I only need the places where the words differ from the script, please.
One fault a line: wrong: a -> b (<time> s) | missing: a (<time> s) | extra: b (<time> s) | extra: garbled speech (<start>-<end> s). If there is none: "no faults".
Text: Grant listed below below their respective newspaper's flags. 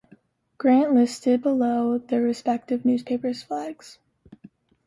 missing: below (2.0 s)